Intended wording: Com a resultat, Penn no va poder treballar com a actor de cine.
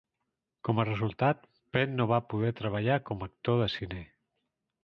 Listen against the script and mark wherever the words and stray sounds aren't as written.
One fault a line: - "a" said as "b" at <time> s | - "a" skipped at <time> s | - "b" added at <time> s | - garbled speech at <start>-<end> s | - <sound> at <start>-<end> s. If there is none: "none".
none